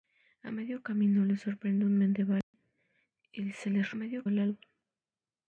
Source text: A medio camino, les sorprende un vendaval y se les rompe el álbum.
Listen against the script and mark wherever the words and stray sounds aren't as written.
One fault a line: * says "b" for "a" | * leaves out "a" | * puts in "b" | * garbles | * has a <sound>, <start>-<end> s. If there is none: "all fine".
* has a dropout, 2.4-2.5 s
* says "medio" for "rompe"